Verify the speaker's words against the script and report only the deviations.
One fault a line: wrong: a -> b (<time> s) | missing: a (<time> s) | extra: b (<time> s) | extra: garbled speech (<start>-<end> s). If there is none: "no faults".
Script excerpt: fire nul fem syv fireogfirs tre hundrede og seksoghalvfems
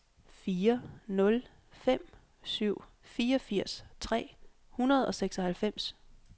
no faults